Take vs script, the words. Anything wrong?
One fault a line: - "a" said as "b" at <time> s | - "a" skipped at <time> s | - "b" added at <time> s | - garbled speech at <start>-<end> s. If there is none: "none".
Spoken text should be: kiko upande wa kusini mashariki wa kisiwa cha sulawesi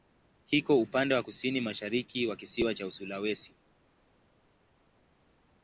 none